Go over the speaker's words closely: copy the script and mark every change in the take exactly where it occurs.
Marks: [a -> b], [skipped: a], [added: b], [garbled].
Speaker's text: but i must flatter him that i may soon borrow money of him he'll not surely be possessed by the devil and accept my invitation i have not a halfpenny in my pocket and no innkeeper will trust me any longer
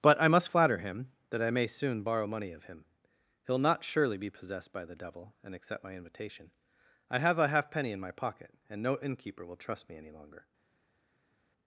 but i must flatter him that i may soon borrow money of him he'll not surely be possessed by the devil and accept my invitation i have [skipped: not] a halfpenny in my pocket and no innkeeper will trust me any longer